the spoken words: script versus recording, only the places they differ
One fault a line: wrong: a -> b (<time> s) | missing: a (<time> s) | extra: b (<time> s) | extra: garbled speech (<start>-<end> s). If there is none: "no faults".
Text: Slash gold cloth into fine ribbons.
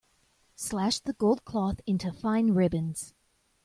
extra: the (1.0 s)